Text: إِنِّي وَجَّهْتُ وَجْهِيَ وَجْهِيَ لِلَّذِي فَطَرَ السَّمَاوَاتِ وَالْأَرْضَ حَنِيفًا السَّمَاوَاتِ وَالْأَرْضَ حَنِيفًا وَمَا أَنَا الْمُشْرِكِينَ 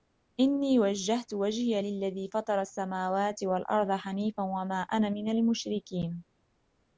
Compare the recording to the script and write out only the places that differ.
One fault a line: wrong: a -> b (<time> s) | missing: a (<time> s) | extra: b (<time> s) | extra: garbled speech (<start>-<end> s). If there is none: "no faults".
missing: وَجْهِيَ (1.8 s)
missing: السَّمَاوَاتِ وَالْأَرْضَ حَنِيفًا (4.4 s)
extra: مِنَ (5.1 s)